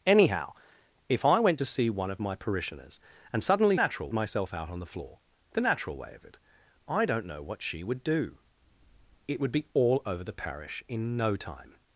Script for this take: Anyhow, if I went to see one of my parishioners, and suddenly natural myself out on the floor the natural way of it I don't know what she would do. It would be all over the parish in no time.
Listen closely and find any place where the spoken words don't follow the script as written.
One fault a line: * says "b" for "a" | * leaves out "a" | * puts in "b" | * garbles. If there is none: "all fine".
all fine